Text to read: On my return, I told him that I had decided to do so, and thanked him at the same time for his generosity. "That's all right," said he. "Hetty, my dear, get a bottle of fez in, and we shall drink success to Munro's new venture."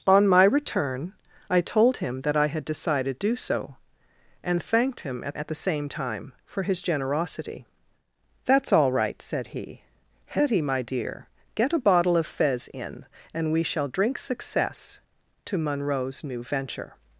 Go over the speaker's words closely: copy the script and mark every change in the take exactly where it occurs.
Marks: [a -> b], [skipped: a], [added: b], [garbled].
On my return, I told him that I had decided [skipped: to] do so, and thanked him at [added: at] the same time for his generosity. "That's all right," said he. "Hetty, my dear, get a bottle of fez in, and we shall drink success to Munro's new venture."